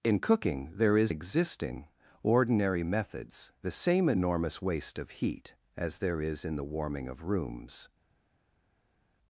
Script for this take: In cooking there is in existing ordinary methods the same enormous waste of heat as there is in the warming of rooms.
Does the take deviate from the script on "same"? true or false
false